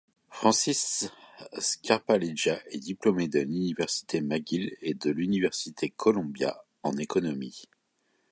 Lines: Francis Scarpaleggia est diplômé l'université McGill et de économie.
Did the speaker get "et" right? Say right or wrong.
right